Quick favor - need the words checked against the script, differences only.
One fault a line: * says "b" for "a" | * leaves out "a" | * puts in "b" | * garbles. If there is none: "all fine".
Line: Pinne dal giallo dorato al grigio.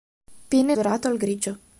* leaves out "dal giallo"